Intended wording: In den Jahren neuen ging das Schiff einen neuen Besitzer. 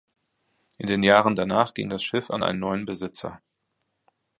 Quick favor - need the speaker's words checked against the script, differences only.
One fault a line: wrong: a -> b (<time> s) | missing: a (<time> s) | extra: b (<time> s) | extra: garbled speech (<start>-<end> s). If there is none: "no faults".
wrong: neuen -> danach (1.4 s)
extra: an (2.3 s)